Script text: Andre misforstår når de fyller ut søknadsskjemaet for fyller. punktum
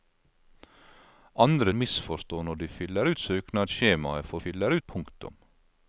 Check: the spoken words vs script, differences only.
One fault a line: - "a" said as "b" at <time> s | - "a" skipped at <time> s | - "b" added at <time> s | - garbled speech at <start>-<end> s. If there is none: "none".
none